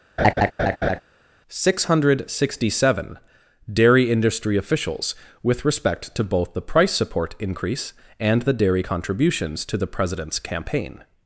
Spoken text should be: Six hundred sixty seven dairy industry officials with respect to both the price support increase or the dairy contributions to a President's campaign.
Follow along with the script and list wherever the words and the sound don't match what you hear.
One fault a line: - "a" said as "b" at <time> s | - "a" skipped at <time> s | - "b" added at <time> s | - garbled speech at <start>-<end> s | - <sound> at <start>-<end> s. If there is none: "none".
- laugh at 0.2-1.0 s
- "or" said as "and" at 8.2 s
- "a" said as "the" at 9.8 s